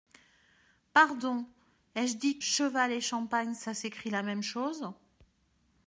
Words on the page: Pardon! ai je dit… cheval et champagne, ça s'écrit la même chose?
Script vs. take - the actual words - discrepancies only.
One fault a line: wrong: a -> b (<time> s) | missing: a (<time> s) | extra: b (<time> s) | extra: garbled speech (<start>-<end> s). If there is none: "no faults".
no faults